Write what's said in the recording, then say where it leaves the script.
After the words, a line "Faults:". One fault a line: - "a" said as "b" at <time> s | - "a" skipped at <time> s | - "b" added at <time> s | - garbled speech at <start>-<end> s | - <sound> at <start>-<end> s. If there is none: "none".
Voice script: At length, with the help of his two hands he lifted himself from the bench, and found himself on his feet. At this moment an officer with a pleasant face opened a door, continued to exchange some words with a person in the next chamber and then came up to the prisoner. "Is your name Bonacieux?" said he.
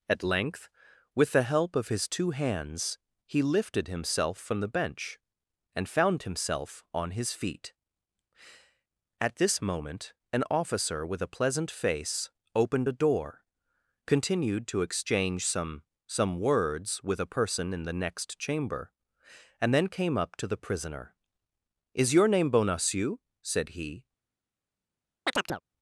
At length, with the help of his two hands he lifted himself from the bench, and found himself on his feet. At this moment an officer with a pleasant face opened a door, continued to exchange some some words with a person in the next chamber and then came up to the prisoner. "Is your name Bonacieux?" said he.
Faults:
- "some" added at 16.1 s
- chirp at 25.3-25.6 s